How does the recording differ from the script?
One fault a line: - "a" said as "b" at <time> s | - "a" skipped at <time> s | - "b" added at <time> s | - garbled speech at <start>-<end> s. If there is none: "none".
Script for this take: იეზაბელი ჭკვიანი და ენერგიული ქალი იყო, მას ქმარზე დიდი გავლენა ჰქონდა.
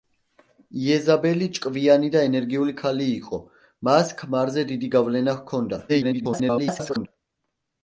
- garbled speech at 5.9-7.1 s